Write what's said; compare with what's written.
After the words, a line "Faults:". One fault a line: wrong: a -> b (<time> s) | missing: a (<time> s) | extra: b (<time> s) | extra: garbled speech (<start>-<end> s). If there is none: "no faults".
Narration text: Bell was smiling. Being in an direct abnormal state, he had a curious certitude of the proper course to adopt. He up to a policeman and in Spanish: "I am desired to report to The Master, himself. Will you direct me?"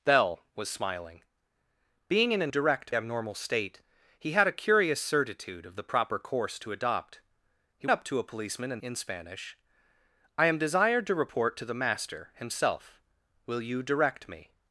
Bell was smiling. Being in an direct abnormal state, he had a curious certitude of the proper course to adopt. He up to a policeman and in Spanish: "I am desired to report to The Master, himself. Will you direct me?"
Faults:
no faults